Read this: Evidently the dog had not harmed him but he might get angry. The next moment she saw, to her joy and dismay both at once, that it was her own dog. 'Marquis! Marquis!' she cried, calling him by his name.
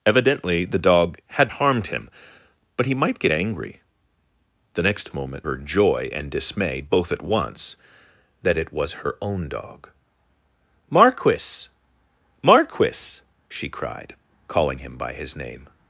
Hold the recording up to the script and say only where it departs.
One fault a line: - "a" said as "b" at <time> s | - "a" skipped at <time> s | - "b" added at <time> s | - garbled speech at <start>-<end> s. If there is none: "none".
- "not" skipped at 1.5 s
- "she saw to" skipped at 5.4 s